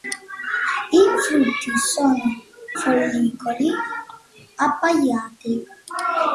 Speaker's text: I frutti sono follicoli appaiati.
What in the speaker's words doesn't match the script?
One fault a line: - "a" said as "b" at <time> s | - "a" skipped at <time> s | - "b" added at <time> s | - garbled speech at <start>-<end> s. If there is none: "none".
none